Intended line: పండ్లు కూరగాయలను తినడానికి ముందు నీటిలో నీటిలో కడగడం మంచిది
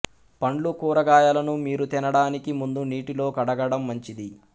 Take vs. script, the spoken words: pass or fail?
fail